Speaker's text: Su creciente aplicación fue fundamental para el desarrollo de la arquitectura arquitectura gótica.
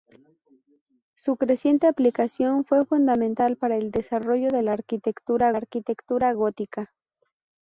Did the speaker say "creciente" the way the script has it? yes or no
yes